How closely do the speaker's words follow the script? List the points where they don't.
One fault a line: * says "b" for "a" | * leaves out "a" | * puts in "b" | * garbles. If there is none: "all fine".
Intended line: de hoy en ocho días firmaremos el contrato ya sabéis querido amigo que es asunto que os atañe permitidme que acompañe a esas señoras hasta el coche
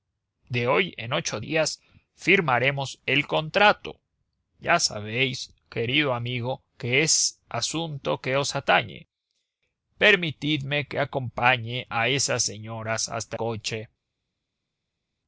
* leaves out "el"